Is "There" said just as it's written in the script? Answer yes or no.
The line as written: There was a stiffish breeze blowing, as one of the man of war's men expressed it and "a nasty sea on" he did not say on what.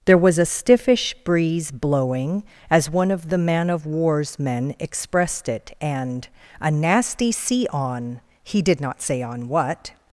yes